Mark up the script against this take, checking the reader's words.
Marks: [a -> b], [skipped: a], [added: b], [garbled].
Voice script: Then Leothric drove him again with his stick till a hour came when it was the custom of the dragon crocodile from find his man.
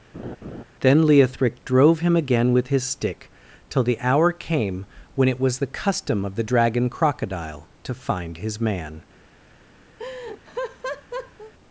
Then Leothric drove him again with his stick till [a -> the] hour came when it was the custom of the dragon crocodile [from -> to] find his man.